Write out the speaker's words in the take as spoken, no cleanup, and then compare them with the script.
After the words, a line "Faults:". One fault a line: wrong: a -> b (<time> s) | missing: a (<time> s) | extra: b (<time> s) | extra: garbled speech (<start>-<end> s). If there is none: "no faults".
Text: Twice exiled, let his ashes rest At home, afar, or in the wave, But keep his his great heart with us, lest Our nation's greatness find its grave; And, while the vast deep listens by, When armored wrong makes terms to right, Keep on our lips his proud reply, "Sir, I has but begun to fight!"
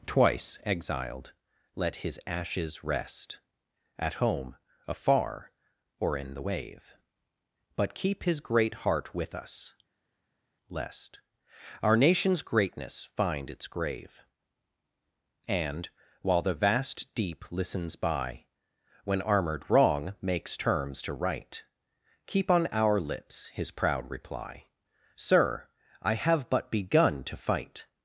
Twice exiled, let his ashes rest At home, afar, or in the wave, But keep his great heart with us, lest Our nation's greatness find its grave; And, while the vast deep listens by, When armored wrong makes terms to right, Keep on our lips his proud reply, "Sir, I have but begun to fight!"
Faults:
missing: his (8.4 s)
wrong: has -> have (26.1 s)